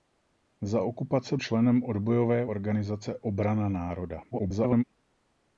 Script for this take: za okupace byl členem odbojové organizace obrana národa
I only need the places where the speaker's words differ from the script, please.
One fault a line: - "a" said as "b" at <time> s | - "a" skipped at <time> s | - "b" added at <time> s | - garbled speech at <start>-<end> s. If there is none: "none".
- "byl" skipped at 1.4 s
- garbled speech at 4.3-4.8 s